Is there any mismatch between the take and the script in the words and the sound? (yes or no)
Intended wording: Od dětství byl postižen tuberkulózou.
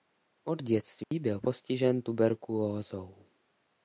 yes